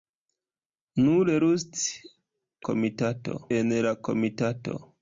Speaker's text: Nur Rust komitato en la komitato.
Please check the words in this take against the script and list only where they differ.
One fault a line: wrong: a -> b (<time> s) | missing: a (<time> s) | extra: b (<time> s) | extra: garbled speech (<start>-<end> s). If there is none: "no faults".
no faults